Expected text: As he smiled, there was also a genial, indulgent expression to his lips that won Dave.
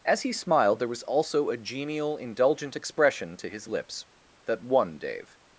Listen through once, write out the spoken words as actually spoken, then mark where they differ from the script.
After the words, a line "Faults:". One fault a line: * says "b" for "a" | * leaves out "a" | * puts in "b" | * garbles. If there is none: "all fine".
As he smiled, there was also a genial, indulgent expression to his lips that won Dave.
Faults:
all fine